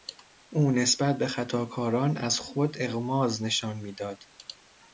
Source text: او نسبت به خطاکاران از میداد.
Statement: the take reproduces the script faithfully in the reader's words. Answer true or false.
false